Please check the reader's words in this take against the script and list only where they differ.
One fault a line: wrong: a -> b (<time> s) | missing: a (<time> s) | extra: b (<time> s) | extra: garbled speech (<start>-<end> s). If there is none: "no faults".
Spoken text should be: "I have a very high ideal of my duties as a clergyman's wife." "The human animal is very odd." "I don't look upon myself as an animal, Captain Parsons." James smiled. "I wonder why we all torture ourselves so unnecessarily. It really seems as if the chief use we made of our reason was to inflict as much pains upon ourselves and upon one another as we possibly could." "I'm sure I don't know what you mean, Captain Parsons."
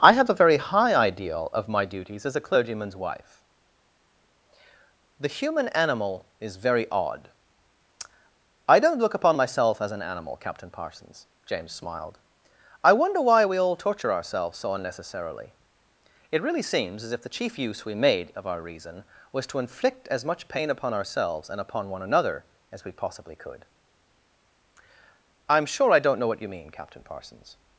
wrong: pains -> pain (20.5 s)